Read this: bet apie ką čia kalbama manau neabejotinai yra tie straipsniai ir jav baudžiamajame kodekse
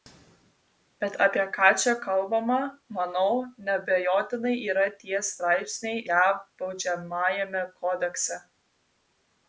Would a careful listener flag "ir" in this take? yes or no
yes